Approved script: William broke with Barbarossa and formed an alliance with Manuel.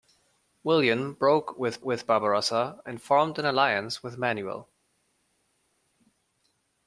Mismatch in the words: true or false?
true